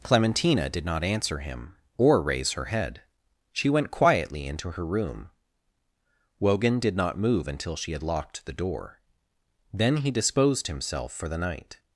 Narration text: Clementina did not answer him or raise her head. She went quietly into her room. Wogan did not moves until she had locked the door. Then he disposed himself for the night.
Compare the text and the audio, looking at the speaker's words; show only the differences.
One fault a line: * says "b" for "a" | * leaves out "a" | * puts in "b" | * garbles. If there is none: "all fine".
* says "move" for "moves"